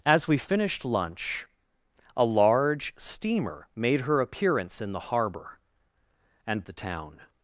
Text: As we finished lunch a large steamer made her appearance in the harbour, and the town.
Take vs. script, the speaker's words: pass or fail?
pass